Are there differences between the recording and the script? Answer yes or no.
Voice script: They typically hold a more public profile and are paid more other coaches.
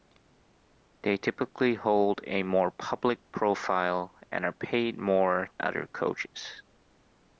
no